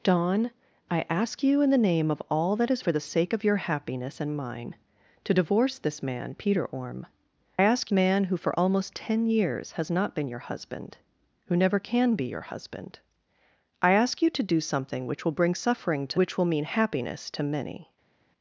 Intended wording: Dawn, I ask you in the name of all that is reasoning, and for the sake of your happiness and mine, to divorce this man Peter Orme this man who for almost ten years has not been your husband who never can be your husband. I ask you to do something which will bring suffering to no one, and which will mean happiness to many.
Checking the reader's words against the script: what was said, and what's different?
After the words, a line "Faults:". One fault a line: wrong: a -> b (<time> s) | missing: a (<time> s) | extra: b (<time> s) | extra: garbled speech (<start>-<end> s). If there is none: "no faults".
Dawn, I ask you in the name of all that is for the sake of your happiness and mine, to divorce this man Peter Orme ask man who for almost ten years has not been your husband who never can be your husband. I ask you to do something which will bring suffering to which will mean happiness to many.
Faults:
missing: reasoning and (2.8 s)
wrong: this -> ask (7.6 s)
missing: no one and (16.2 s)